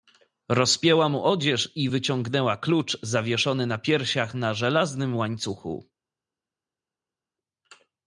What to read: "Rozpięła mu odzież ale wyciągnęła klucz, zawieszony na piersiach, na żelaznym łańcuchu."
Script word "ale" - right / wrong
wrong